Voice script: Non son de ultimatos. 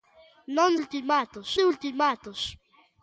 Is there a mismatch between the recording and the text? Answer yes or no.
yes